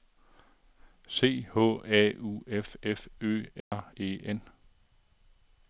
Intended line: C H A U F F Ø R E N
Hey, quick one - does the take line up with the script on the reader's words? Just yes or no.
yes